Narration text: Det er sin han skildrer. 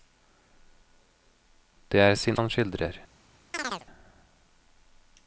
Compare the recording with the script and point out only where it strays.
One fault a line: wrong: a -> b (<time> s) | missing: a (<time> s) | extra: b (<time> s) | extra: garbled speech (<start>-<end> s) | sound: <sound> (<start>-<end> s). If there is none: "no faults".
sound: chirp (3.5-3.9 s)